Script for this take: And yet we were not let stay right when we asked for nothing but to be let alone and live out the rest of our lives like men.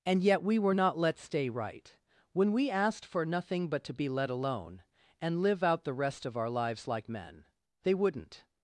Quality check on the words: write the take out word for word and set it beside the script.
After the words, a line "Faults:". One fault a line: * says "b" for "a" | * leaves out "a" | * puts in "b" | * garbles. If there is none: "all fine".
And yet we were not let stay right when we asked for nothing but to be let alone and live out the rest of our lives like men. They wouldn't
Faults:
* puts in "They wouldn't"